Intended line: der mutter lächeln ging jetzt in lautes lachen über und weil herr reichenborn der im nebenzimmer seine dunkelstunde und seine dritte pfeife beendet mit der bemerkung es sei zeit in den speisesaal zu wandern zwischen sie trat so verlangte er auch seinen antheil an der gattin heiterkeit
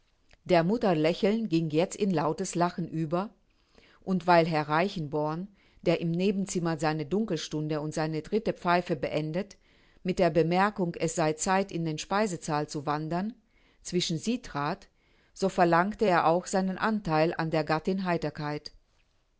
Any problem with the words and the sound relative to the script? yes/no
no